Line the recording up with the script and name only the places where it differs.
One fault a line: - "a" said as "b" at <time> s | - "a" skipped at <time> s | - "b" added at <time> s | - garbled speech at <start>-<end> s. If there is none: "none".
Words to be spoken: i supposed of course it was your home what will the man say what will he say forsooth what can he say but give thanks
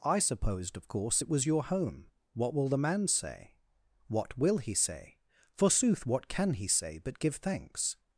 none